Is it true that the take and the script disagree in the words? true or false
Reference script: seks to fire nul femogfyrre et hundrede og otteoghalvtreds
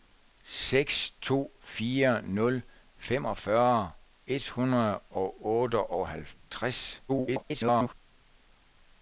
true